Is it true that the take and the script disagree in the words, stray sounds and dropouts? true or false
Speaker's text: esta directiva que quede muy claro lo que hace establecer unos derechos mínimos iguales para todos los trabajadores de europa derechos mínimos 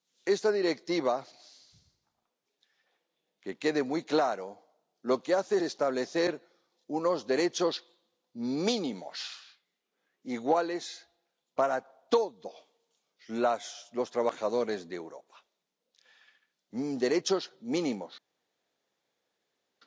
false